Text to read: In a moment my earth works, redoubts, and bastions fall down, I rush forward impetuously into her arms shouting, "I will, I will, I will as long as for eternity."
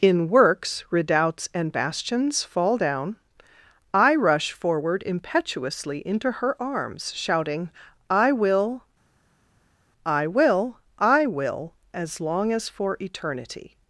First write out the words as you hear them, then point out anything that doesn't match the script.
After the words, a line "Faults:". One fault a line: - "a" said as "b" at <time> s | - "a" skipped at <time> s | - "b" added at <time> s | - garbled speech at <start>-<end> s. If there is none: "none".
In works, redoubts, and bastions fall down, I rush forward impetuously into her arms shouting, "I will, I will, I will as long as for eternity."
Faults:
- "a moment my earth" skipped at 0.3 s